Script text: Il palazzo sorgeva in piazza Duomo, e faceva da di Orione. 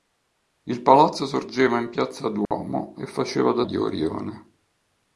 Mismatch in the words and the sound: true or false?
true